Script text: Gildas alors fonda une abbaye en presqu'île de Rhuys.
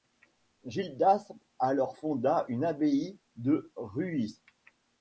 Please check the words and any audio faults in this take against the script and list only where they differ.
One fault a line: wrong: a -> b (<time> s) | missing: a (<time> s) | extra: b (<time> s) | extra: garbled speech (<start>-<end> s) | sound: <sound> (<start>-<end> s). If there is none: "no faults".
missing: en presqu'île (3.2 s)